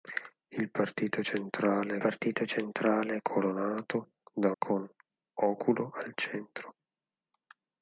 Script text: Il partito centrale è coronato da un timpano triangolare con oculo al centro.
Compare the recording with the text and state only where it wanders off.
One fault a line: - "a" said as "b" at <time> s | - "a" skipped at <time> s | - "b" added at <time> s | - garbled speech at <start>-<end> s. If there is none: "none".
- "partito centrale" added at 2.0 s
- "un timpano triangolare" skipped at 4.5 s